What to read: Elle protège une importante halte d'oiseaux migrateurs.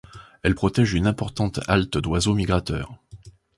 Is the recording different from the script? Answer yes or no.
no